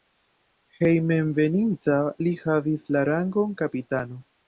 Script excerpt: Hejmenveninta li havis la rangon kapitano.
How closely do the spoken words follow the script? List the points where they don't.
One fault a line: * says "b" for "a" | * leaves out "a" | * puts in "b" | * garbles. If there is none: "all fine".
all fine